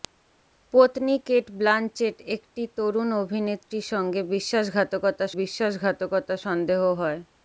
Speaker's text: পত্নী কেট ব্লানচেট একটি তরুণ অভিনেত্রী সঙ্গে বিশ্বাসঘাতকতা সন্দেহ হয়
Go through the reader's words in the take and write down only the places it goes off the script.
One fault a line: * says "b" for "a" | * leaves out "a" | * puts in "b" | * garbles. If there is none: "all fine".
* puts in "বিশ্বাসঘাতকতা"